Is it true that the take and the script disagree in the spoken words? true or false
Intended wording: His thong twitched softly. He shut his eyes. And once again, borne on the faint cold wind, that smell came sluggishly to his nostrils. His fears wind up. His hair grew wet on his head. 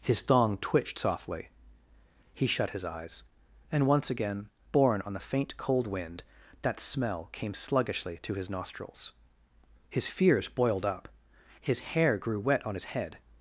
true